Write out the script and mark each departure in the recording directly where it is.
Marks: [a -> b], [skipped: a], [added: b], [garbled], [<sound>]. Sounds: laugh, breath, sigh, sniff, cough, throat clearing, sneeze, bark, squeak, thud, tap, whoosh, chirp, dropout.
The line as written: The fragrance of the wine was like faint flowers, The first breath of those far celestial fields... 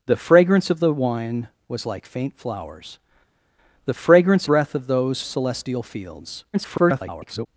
The fragrance of the wine was like faint flowers, The [first -> fragrance] breath of those [skipped: far] celestial fields... [garbled]